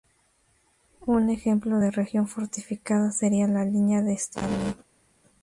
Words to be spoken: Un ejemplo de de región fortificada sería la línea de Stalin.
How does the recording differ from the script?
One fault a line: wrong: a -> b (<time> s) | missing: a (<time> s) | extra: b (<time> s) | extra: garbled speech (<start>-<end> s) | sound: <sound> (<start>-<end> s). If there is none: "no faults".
missing: de (1.9 s)